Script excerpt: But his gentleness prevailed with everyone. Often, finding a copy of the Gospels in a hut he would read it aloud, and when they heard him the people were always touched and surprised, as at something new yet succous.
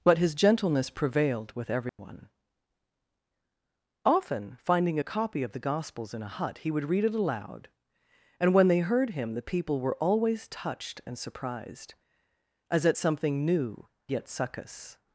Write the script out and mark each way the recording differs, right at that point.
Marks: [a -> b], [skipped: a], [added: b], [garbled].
But his gentleness prevailed with everyone. Often, finding a copy of the Gospels in a hut he would read it aloud, and when they heard him the people were always touched and surprised, as at something new yet succous.